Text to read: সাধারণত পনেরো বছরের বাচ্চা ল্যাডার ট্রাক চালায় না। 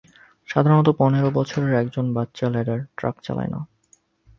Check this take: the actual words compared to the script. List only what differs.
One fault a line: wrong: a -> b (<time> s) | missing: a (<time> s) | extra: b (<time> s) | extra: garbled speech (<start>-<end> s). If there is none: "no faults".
extra: একজন (1.7 s)